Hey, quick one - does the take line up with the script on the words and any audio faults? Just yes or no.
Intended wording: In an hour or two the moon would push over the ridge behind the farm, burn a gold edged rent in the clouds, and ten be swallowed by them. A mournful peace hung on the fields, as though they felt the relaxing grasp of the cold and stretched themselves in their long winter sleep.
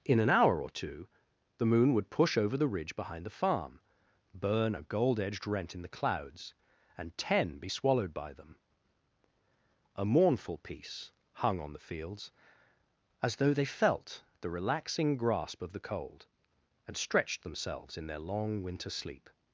yes